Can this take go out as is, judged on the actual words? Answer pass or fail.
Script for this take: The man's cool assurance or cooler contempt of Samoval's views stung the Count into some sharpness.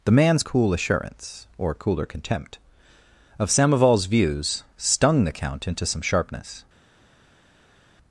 pass